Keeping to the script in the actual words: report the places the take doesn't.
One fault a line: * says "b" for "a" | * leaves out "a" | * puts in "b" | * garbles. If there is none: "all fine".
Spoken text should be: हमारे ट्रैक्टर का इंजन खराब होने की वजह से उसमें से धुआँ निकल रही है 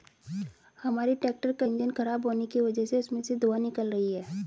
all fine